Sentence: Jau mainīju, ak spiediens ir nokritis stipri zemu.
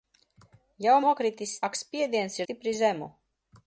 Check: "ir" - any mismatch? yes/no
yes